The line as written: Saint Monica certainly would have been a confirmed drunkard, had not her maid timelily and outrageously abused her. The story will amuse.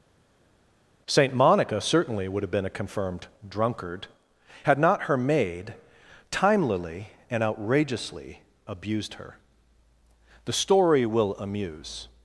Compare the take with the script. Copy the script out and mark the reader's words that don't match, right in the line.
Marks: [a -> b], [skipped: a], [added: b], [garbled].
Saint Monica certainly would have been a confirmed drunkard, had not her maid timelily and outrageously abused her. The story will amuse.